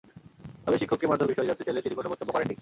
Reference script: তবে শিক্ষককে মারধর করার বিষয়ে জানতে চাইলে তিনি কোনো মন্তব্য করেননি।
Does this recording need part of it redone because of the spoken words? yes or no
yes